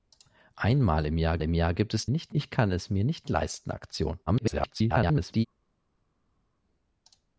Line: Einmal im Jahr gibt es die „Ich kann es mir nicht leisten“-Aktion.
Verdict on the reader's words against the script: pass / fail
fail